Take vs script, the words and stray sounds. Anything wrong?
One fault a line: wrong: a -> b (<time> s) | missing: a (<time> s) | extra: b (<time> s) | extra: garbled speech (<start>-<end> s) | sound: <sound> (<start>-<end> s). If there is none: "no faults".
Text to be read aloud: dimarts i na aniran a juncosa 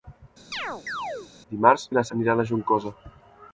sound: chirp (0.5-1.3 s)